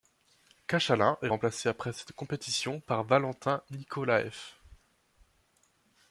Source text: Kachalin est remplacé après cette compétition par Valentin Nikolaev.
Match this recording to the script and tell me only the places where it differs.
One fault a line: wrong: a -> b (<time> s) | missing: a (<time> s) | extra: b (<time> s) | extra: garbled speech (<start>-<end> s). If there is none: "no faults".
no faults